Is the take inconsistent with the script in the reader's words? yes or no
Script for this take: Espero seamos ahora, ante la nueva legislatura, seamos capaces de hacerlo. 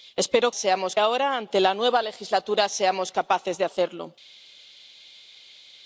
no